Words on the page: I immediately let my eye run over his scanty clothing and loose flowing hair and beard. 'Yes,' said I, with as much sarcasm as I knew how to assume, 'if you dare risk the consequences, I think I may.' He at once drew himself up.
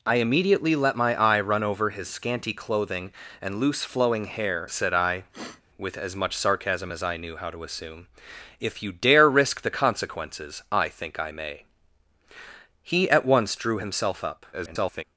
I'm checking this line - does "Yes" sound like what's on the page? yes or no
no